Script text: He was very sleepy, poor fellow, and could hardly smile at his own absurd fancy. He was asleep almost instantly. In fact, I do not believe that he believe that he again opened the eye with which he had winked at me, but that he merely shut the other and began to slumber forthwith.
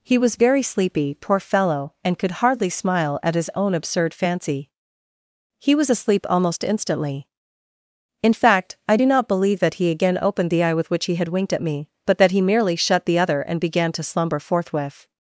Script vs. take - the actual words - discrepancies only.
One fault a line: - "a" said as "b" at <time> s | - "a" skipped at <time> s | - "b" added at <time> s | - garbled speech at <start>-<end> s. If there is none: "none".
- "believe that he" skipped at 9.9 s